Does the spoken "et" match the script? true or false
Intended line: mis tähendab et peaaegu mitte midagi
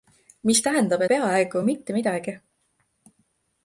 false